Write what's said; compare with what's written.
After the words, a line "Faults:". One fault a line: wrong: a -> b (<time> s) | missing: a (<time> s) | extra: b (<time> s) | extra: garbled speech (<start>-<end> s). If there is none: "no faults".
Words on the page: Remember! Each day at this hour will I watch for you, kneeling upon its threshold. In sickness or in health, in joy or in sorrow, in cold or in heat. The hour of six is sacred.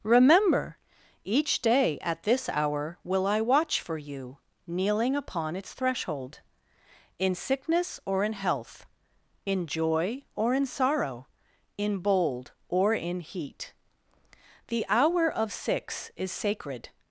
Remember! Each day at this hour will I watch for you, kneeling upon its threshold. In sickness or in health, in joy or in sorrow, in bold or in heat. The hour of six is sacred.
Faults:
wrong: cold -> bold (12.0 s)